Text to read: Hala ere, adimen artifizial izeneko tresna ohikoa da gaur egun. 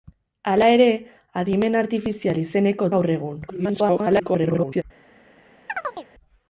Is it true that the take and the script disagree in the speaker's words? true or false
true